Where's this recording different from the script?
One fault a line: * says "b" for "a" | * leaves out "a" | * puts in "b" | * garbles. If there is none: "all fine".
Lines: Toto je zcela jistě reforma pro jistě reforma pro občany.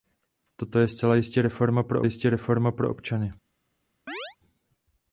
all fine